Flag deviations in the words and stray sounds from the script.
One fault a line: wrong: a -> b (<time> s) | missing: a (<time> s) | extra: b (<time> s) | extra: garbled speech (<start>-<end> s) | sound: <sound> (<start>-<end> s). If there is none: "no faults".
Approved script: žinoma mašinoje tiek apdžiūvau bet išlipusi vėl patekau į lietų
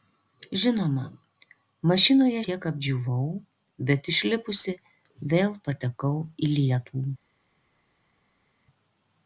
no faults